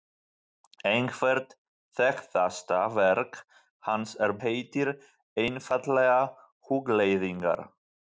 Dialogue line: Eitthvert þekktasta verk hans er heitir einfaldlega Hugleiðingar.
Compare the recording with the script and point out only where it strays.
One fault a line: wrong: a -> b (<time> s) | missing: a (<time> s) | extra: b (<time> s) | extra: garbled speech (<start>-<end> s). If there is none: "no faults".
no faults